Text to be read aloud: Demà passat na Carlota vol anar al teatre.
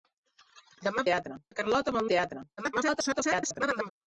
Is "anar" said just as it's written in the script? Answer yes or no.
no